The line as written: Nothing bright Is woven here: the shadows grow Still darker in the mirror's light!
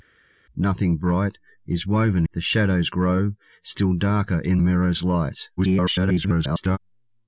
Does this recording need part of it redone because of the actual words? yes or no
yes